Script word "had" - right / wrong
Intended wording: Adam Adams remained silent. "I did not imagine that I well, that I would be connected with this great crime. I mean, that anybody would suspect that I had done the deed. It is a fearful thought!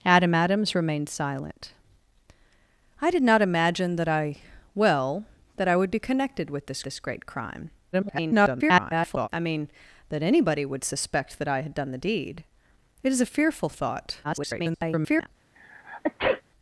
right